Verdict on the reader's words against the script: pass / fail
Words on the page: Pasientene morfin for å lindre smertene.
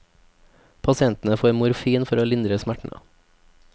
fail